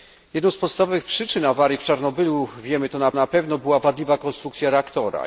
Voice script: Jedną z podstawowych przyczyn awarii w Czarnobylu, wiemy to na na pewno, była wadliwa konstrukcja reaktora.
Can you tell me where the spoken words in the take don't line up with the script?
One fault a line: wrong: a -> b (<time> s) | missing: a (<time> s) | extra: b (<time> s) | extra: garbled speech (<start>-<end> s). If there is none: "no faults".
no faults